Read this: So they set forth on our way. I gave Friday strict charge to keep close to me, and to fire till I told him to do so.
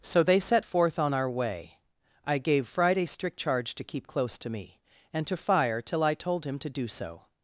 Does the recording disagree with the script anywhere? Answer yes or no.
no